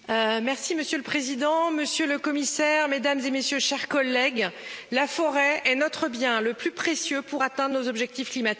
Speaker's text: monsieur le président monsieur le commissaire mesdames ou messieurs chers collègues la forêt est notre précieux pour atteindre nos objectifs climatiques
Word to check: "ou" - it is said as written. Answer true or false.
false